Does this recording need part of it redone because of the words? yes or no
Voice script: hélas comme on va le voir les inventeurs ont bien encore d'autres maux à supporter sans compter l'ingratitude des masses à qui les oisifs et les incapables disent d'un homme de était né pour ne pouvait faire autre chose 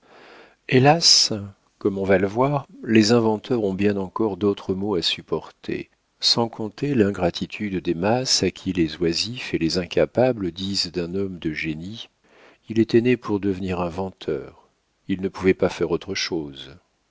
yes